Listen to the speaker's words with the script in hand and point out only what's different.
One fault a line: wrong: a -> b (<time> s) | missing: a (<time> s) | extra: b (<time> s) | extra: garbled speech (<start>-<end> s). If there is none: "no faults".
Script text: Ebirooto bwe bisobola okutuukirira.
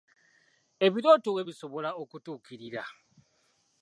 no faults